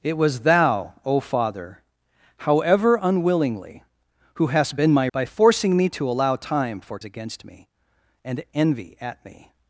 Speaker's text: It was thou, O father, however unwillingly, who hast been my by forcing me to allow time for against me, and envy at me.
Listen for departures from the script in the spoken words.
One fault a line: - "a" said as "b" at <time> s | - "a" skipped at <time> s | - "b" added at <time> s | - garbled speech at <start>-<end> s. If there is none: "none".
none